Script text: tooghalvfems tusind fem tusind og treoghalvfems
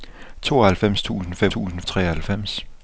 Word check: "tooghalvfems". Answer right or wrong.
right